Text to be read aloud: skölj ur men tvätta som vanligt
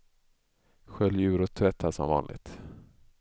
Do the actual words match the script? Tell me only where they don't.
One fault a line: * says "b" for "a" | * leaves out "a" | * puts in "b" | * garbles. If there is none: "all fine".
* says "och" for "men"